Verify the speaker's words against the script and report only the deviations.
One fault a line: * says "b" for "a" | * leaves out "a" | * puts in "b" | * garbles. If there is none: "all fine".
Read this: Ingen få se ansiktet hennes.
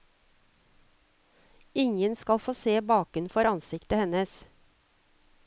* puts in "skal"
* puts in "bakenfor"